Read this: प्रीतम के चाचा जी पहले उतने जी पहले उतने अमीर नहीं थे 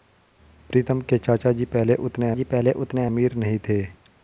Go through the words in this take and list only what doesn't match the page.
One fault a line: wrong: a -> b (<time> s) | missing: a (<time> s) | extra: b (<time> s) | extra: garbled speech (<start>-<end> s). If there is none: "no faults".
no faults